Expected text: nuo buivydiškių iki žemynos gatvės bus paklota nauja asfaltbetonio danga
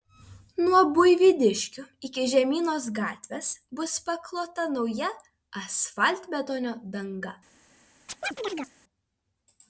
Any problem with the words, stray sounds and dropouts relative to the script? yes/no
yes